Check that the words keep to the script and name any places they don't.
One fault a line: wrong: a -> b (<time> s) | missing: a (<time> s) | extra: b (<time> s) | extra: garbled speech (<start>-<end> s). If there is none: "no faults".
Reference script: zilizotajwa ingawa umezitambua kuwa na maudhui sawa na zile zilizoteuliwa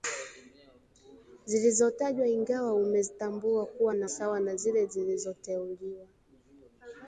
missing: maudhui (4.1 s)